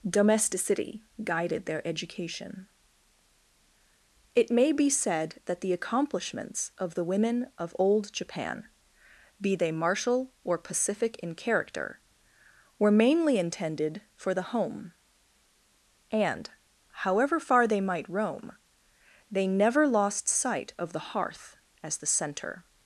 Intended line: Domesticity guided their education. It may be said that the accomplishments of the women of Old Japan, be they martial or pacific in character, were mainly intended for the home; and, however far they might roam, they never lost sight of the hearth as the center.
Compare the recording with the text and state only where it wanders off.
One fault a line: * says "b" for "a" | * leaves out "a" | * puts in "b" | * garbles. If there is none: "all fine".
all fine